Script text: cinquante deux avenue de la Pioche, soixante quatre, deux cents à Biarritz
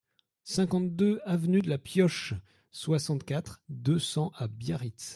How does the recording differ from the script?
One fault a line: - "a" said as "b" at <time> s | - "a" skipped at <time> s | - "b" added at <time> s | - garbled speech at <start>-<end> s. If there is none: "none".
none